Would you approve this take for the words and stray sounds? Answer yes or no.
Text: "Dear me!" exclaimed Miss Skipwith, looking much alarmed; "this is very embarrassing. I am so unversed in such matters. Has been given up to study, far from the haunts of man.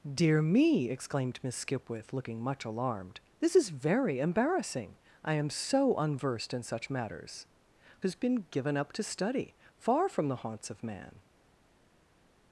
yes